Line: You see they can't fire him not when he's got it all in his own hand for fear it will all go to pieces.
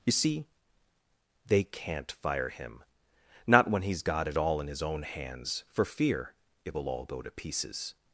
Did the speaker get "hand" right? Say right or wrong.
wrong